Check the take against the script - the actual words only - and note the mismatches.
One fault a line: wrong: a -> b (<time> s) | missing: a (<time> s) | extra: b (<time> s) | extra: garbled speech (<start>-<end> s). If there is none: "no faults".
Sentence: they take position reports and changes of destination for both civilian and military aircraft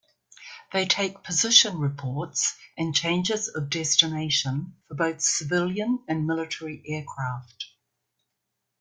no faults